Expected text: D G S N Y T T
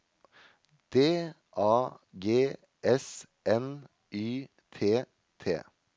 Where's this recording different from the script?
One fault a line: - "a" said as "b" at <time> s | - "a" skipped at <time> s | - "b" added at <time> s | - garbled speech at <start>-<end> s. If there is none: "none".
- "A" added at 1.6 s